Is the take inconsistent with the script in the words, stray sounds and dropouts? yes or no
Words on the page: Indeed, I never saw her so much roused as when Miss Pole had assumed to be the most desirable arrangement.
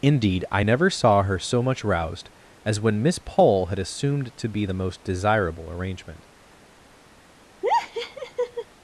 yes